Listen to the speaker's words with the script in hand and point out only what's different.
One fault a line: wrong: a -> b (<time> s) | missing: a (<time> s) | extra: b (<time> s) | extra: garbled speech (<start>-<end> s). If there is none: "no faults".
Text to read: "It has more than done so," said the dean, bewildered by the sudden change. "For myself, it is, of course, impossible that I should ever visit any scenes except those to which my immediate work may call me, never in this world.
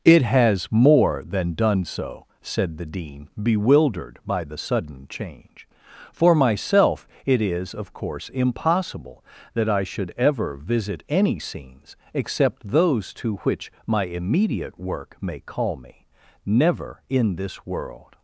no faults